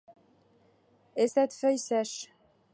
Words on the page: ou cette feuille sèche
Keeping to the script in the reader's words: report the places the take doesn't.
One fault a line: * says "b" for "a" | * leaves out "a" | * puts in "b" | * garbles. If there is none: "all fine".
* says "et" for "ou"